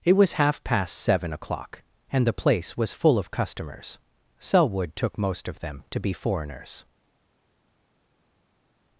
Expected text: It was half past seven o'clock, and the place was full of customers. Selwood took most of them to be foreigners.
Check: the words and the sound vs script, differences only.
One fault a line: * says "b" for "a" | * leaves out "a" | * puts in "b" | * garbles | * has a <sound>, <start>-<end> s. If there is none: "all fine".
all fine